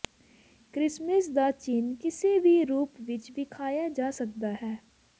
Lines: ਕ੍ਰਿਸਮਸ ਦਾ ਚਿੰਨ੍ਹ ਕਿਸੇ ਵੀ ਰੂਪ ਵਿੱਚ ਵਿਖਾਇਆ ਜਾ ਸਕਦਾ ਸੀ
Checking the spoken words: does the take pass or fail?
fail